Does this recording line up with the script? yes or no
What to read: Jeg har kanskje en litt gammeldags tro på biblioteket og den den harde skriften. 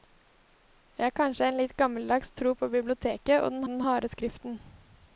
yes